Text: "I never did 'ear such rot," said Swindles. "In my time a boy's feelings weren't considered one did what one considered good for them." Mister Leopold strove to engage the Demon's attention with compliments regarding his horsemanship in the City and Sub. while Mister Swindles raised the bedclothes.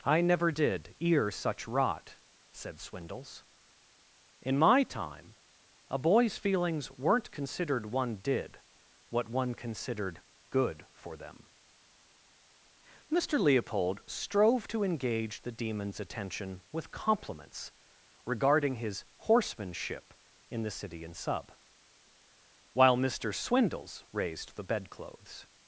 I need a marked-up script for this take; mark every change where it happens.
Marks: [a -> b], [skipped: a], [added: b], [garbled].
"I never did 'ear such rot," said Swindles. "In my time a boy's feelings weren't considered one did what one considered good for them." Mister Leopold strove to engage the Demon's attention with compliments regarding his horsemanship in the City and Sub. while Mister Swindles raised the bedclothes.